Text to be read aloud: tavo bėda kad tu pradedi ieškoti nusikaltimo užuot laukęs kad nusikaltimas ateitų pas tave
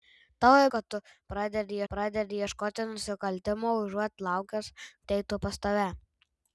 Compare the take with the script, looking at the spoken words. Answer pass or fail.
fail